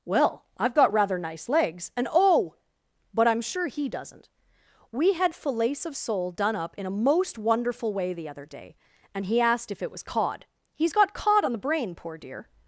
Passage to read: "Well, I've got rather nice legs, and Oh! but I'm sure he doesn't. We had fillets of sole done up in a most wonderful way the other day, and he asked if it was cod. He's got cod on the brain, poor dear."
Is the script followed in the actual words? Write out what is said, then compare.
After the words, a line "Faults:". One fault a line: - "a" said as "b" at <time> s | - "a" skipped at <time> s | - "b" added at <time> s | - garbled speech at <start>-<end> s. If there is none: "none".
"Well, I've got rather nice legs, and Oh! but I'm sure he doesn't. We had fillets of sole done up in a most wonderful way the other day, and he asked if it was cod. He's got cod on the brain, poor dear."
Faults:
none